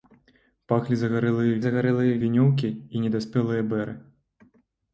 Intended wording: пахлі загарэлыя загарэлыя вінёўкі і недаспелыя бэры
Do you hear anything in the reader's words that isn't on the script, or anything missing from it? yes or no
no